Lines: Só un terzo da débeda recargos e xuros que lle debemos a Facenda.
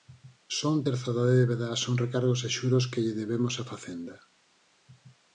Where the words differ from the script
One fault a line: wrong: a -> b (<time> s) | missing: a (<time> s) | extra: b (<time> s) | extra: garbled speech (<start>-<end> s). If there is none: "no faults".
extra: son (1.8 s)